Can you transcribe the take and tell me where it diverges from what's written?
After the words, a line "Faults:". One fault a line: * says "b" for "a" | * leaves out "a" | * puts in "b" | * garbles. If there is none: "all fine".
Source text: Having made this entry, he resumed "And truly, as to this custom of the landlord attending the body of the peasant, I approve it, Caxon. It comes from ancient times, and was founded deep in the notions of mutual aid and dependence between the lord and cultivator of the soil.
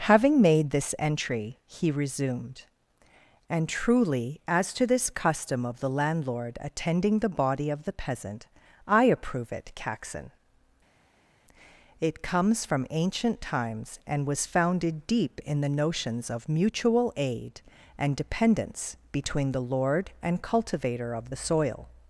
Having made this entry, he resumed "And truly, as to this custom of the landlord attending the body of the peasant, I approve it, Caxon. It comes from ancient times, and was founded deep in the notions of mutual aid and dependence between the lord and cultivator of the soil.
Faults:
all fine